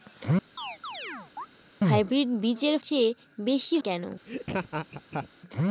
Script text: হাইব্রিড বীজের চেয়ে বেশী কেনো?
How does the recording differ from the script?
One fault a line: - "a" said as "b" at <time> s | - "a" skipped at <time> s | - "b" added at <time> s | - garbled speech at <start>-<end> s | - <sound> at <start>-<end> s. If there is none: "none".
- chirp at 0.6-1.5 s
- laugh at 4.3-5.3 s